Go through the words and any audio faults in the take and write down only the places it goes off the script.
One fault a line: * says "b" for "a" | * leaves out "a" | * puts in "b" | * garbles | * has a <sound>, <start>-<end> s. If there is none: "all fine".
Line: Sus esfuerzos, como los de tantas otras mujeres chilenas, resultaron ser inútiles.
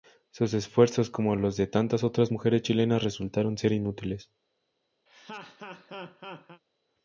* has a laugh, 5.1-6.6 s